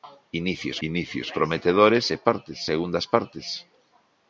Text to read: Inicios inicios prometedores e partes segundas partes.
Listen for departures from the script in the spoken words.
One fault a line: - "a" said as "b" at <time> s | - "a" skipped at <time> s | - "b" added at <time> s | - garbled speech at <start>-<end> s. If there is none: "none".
none